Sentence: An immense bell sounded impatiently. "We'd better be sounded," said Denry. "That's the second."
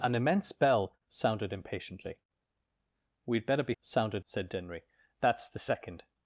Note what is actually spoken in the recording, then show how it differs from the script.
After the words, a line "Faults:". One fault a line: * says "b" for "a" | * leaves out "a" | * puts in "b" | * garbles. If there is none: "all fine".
An immense bell sounded impatiently. "We'd better be sounded," said Denry. "That's the second."
Faults:
all fine